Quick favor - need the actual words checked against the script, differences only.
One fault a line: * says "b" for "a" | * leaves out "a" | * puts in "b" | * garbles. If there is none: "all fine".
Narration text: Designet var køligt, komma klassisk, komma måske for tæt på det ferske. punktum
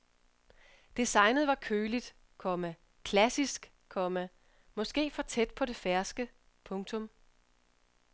all fine